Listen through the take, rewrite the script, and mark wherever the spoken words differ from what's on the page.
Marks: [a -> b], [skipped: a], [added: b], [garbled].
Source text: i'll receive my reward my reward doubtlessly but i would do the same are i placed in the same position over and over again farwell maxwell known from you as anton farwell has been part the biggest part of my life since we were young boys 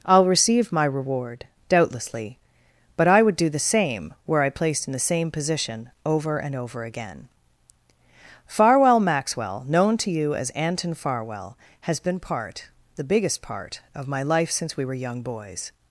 i'll receive my reward [skipped: my reward] doubtlessly but i would do the same [are -> were] i placed in the same position over and over again farwell maxwell known [from -> to] you as anton farwell has been part the biggest part of my life since we were young boys